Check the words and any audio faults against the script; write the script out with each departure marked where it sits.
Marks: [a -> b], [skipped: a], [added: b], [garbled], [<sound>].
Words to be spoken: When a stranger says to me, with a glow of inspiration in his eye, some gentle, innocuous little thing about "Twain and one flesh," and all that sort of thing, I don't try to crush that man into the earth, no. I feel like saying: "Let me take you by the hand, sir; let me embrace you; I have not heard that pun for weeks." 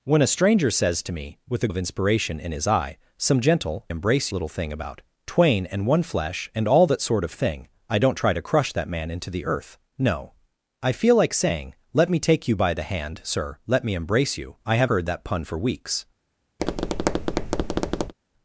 When a stranger says to me, with a [skipped: glow] of inspiration in his eye, some gentle, [innocuous -> embrace] little thing about "Twain and one flesh," and all that sort of thing, I don't try to crush that man into the earth, no. I feel like saying: "Let me take you by the hand, sir; let me embrace you; I have [skipped: not] heard that pun for weeks." [tap]